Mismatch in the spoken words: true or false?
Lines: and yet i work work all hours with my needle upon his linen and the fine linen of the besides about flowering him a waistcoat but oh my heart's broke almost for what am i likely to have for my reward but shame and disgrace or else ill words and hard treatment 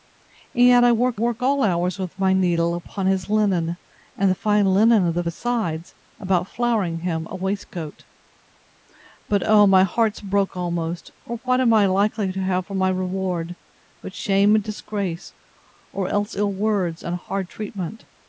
false